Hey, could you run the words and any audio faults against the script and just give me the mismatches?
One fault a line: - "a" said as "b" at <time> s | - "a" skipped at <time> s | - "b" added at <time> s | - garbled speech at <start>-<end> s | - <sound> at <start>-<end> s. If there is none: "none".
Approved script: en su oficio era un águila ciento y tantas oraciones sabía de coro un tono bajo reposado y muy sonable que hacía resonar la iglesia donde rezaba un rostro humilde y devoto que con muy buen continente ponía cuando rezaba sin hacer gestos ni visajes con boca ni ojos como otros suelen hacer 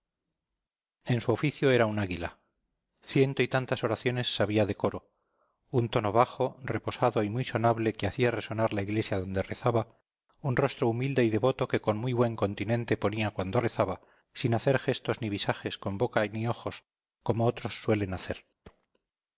- thud at 18.6-18.9 s